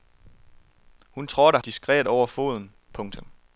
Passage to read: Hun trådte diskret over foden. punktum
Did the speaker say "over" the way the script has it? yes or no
yes